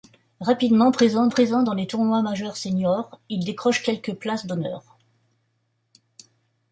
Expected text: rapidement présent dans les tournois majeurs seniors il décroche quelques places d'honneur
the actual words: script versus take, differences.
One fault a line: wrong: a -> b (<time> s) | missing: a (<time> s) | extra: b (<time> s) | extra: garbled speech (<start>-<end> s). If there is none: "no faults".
extra: présent (1.3 s)